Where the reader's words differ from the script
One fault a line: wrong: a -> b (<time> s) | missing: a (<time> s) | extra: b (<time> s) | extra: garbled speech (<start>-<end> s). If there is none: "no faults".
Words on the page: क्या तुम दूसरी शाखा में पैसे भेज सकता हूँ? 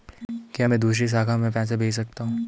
wrong: तुम -> मैं (0.7 s)